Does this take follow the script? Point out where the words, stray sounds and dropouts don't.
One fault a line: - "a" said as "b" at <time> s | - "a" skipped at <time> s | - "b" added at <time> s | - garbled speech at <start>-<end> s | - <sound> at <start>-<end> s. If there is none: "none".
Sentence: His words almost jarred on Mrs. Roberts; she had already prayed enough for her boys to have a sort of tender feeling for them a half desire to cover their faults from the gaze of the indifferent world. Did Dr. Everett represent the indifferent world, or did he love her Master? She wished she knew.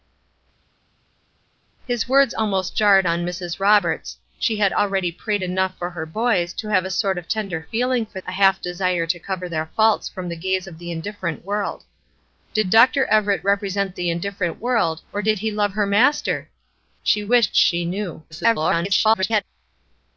- "them" skipped at 8.2 s
- garbled speech at 18.3-19.4 s